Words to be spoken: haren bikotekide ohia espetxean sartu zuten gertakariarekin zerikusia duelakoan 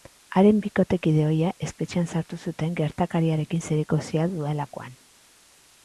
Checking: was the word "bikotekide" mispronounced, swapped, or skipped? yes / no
no